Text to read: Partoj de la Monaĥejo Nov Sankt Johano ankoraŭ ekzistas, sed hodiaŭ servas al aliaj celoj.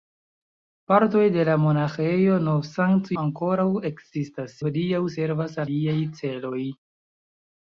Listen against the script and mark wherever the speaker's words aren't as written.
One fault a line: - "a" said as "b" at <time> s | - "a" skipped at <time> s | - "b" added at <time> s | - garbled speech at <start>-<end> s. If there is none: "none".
- "Johano" skipped at 3.1 s
- "sed" skipped at 4.6 s
- "al" skipped at 5.6 s